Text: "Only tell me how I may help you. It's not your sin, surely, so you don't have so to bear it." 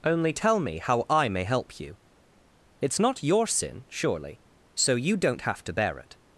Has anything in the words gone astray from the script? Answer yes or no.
yes